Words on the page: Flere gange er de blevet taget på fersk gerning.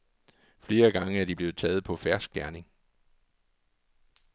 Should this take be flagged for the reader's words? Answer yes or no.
no